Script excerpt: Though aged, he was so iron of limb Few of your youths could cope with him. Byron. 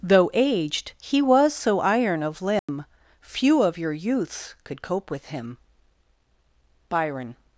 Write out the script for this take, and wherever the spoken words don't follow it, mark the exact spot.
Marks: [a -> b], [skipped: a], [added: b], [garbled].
Though aged, he was so iron of limb Few of your youths could cope with him. Byron.